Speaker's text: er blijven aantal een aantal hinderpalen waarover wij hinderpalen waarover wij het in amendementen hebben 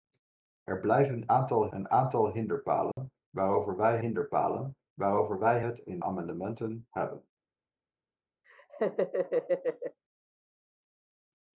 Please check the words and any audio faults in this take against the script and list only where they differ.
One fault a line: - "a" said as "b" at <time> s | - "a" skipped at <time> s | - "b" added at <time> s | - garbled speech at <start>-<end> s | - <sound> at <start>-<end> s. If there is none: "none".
- dropout at 2.9-3.0 s
- laugh at 8.4-10.0 s